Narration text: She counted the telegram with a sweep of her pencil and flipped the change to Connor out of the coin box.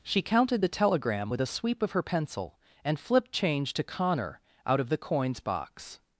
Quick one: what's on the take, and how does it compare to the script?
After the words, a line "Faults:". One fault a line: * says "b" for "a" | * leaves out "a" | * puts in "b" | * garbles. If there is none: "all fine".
She counted the telegram with a sweep of her pencil and flipped change to Connor out of the coins box.
Faults:
* leaves out "the"
* says "coins" for "coin"